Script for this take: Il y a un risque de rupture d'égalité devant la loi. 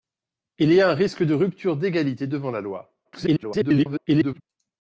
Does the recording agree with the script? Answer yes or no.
no